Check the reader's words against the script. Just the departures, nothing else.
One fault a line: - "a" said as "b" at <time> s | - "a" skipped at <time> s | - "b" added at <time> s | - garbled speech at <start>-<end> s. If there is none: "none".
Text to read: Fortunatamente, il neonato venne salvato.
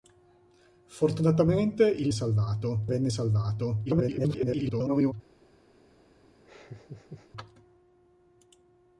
- "neonato" said as "salvato" at 2.1 s
- garbled speech at 3.9-5.1 s